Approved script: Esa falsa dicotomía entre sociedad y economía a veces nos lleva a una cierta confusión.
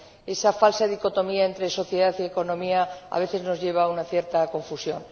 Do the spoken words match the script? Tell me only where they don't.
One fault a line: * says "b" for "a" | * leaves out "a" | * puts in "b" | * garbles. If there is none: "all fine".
all fine